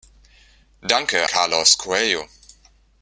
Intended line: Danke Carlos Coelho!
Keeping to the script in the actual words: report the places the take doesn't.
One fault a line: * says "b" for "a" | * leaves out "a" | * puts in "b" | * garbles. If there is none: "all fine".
all fine